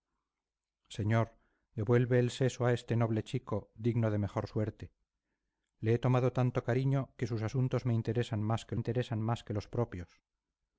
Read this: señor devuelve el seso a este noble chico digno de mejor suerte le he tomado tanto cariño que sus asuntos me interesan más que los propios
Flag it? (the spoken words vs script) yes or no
yes